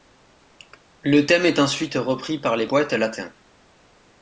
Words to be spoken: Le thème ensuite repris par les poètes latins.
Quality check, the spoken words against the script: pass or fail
fail